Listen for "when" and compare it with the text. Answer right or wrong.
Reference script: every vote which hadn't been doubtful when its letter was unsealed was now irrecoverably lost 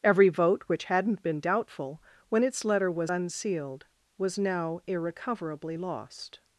right